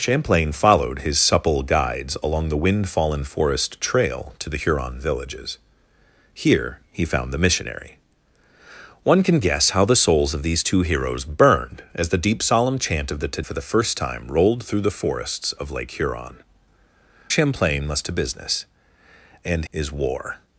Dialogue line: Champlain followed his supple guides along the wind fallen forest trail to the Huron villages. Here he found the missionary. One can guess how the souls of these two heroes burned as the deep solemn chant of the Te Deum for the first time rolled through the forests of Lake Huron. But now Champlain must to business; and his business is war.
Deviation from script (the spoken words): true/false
true